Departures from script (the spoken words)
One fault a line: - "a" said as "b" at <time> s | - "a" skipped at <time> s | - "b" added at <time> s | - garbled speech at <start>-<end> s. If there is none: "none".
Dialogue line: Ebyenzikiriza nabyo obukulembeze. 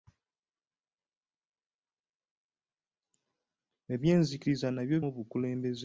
none